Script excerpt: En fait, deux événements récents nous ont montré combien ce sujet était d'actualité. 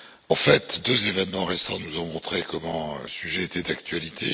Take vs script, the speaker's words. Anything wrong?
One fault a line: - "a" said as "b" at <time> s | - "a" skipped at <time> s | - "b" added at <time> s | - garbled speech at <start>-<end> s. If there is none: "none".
- "ce" skipped at 2.7 s